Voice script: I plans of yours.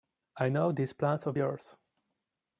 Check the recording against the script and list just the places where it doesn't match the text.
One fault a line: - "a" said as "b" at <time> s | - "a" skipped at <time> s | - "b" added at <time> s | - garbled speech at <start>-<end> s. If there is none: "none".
- "know these" added at 0.5 s